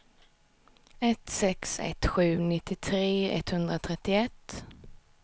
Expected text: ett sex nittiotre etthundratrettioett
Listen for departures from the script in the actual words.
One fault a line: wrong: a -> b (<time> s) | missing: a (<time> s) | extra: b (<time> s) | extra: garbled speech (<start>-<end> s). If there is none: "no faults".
extra: ett sju (1.8 s)